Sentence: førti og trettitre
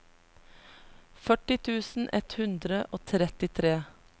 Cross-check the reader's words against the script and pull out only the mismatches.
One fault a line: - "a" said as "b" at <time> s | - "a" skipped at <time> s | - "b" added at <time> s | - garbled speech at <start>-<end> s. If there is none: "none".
- "tusen ett hundre" added at 1.7 s